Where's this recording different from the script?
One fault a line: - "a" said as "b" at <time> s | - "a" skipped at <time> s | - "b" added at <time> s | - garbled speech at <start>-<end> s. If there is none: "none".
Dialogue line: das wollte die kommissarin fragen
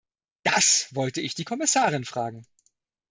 - "ich" added at 1.2 s